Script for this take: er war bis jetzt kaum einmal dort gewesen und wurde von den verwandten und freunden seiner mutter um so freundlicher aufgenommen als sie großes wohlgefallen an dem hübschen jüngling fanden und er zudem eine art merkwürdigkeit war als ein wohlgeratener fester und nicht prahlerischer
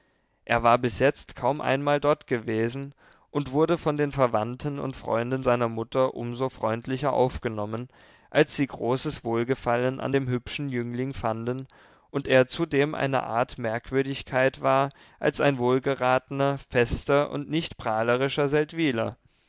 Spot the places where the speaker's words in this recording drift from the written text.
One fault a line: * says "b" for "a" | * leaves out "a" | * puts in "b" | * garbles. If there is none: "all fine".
all fine